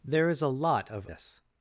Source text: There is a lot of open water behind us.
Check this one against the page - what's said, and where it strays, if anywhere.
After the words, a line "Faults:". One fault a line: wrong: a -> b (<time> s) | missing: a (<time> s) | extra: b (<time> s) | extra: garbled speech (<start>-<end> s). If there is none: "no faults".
There is a lot of us.
Faults:
missing: open water behind (1.1 s)